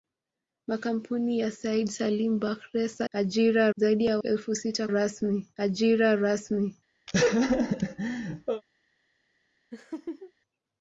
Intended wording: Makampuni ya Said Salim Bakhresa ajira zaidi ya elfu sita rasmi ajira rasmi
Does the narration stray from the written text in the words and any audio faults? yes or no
yes